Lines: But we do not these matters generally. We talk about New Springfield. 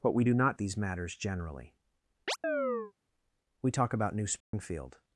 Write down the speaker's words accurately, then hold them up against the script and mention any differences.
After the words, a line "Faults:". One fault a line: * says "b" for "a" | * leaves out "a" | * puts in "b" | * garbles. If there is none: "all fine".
But we do not these matters generally. We talk about New Springfield.
Faults:
all fine